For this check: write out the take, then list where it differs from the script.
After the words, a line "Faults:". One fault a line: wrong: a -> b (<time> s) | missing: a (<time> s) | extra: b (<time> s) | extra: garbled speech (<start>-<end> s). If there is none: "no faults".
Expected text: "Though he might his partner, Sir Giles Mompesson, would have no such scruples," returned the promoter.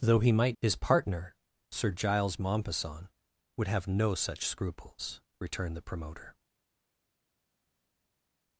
"Though he might his partner, Sir Giles Mompesson, would have no such scruples," returned the promoter.
Faults:
no faults